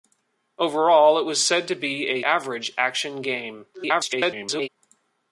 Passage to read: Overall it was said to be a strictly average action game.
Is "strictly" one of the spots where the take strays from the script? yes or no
yes